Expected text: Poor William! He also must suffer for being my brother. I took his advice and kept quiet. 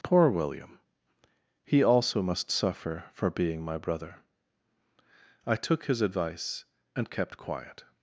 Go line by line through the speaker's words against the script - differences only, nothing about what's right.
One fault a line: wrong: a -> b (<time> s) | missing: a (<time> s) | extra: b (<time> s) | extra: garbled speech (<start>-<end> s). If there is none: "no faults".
no faults